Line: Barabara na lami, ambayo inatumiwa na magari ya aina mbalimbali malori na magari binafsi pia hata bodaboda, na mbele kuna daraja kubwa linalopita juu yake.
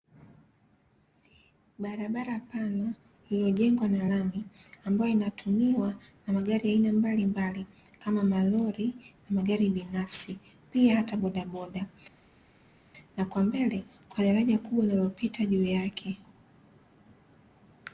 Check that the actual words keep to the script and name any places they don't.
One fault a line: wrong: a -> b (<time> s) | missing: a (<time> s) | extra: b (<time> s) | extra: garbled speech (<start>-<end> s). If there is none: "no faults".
extra: pana iliyojengwa (2.4 s)
extra: kama (8.0 s)
extra: kwa (13.3 s)